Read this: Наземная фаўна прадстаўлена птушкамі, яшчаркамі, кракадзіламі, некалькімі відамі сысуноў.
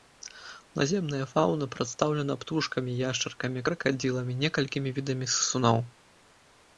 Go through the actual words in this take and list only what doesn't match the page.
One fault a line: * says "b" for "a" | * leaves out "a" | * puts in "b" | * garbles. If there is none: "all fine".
all fine